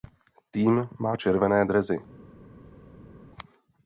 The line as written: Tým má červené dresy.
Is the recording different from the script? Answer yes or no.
no